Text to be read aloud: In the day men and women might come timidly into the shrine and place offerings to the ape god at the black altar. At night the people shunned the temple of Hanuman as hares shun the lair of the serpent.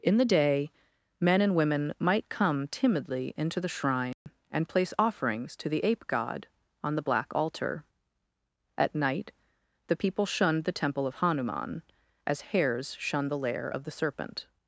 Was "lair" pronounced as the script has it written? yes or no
yes